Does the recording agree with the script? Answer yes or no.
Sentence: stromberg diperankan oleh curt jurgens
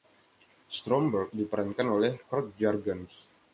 yes